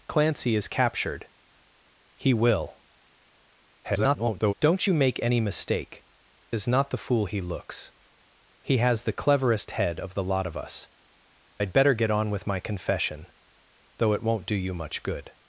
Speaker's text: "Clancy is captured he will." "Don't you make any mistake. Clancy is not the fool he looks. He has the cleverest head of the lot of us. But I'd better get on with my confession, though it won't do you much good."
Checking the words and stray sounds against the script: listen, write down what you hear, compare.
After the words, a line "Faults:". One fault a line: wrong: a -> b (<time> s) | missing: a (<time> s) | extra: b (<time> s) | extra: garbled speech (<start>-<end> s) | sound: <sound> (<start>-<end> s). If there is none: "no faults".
"Clancy is captured he will." [garbled] "Don't you make any mistake. Is not the fool he looks. He has the cleverest head of the lot of us. I'd better get on with my confession, though it won't do you much good."
Faults:
extra: garbled speech (3.8-4.5 s)
missing: Clancy (6.0 s)
missing: But (10.9 s)